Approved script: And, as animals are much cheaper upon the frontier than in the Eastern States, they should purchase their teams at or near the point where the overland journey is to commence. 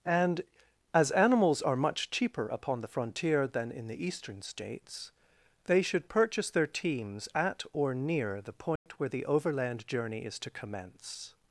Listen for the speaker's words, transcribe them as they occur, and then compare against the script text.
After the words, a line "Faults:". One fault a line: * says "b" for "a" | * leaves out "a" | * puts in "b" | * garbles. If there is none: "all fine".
And, as animals are much cheaper upon the frontier than in the Eastern States, they should purchase their teams at or near the point where the overland journey is to commence.
Faults:
all fine